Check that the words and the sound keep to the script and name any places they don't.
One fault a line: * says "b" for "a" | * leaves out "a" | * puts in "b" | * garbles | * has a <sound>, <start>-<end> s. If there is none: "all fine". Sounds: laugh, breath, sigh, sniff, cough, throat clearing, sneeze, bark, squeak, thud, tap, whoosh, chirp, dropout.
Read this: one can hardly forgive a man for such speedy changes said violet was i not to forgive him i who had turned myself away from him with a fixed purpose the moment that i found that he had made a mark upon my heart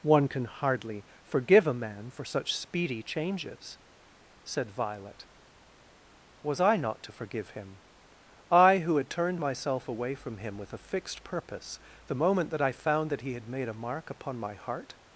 all fine